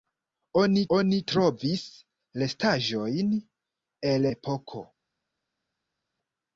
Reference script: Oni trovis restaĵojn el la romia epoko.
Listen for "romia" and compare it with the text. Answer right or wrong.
wrong